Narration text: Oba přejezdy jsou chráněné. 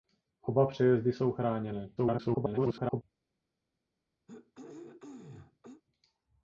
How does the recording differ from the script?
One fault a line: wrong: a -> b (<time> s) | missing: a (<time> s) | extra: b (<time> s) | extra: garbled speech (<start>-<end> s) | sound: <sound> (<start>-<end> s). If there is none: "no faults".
extra: garbled speech (2.0-3.0 s)
sound: throat clearing (4.3-5.8 s)